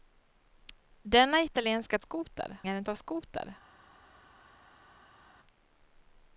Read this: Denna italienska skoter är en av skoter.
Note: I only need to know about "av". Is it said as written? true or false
true